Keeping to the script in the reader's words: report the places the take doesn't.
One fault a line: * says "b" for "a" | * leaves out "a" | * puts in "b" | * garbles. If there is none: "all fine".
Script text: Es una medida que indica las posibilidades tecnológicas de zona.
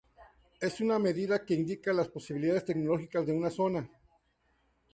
* puts in "una"